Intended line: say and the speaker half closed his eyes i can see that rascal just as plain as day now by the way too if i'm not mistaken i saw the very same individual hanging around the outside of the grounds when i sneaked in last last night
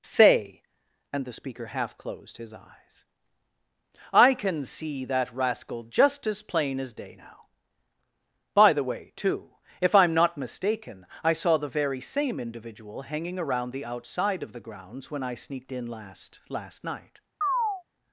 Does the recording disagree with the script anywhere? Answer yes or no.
no